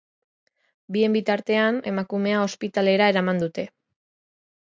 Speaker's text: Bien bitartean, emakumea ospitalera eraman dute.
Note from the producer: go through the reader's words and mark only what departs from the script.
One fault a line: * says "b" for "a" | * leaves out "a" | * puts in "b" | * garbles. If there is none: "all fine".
all fine